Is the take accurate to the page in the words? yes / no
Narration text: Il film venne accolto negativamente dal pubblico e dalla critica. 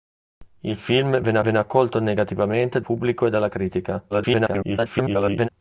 no